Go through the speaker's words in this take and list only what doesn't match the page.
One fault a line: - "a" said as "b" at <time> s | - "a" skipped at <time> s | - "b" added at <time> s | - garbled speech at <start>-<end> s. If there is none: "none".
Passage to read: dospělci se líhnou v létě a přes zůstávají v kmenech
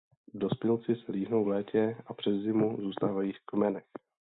- "zimu" added at 2.3 s